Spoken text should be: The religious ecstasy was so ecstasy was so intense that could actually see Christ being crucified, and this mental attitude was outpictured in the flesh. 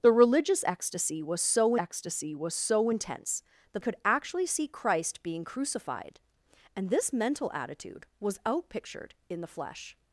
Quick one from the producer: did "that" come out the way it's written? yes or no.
yes